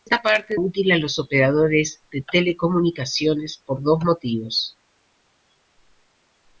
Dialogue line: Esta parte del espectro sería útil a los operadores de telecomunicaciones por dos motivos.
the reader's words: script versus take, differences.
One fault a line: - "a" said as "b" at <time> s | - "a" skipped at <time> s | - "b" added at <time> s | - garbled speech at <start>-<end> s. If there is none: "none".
- "del espectro sería" skipped at 0.6 s